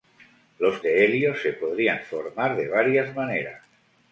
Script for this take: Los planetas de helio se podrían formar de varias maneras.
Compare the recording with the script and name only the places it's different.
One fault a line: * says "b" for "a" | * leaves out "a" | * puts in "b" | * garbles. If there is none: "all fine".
* leaves out "planetas"